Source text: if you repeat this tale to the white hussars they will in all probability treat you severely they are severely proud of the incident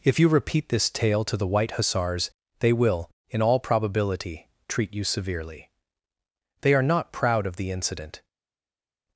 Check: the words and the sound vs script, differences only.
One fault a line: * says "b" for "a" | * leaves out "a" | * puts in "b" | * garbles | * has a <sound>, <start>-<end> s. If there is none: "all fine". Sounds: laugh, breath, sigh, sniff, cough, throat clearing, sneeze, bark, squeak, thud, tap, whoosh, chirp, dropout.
* says "not" for "severely"